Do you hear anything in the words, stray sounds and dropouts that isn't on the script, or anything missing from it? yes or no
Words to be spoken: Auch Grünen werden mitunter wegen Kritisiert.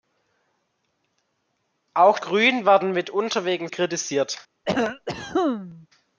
yes